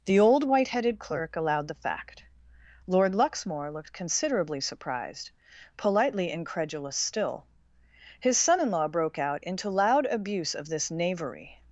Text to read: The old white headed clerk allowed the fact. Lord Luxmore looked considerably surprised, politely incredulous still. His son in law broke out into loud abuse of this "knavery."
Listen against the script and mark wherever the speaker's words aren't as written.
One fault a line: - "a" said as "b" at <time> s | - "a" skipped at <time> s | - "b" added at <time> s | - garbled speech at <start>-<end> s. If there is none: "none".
none